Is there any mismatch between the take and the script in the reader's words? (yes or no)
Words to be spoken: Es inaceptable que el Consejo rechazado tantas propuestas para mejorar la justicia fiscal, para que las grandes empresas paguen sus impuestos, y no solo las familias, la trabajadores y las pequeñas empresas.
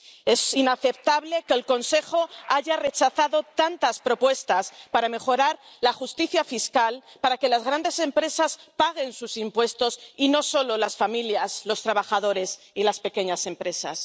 yes